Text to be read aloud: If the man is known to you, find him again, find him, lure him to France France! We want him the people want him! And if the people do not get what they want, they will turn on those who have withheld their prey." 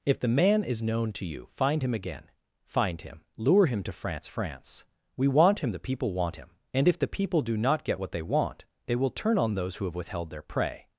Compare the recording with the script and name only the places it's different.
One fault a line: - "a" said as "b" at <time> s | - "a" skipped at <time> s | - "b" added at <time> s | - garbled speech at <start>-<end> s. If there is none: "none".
none